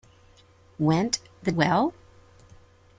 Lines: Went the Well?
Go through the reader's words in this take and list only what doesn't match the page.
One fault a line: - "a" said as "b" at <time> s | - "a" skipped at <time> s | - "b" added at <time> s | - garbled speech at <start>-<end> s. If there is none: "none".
none